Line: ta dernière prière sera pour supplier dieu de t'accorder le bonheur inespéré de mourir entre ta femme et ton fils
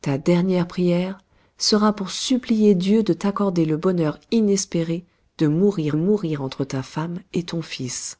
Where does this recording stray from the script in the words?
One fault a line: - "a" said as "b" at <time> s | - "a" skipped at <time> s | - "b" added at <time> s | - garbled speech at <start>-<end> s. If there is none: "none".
- "mourir" added at 5.9 s